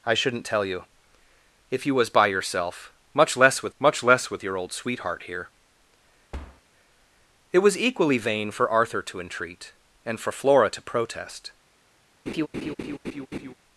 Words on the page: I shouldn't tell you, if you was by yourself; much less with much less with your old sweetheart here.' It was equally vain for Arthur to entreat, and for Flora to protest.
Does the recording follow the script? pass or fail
pass